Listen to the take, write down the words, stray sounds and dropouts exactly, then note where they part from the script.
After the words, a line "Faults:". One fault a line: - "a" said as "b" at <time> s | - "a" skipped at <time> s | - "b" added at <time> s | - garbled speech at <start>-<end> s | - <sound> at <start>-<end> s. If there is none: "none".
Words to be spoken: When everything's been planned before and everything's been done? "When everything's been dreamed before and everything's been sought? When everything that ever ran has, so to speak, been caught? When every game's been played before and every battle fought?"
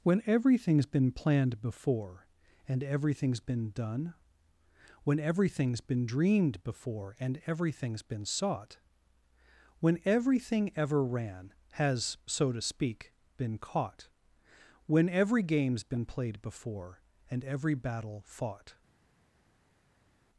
When everything's been planned before and everything's been done? "When everything's been dreamed before and everything's been sought? When everything ever ran has, so to speak, been caught? When every game's been played before and every battle fought?"
Faults:
- "that" skipped at 10.7 s